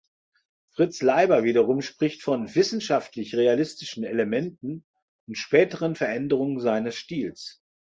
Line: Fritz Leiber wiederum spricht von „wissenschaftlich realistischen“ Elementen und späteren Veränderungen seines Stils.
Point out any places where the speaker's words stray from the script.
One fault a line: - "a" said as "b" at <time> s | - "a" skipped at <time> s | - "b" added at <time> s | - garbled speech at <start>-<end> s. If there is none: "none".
none